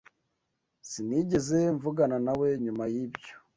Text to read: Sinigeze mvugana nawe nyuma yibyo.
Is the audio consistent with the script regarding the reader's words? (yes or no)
yes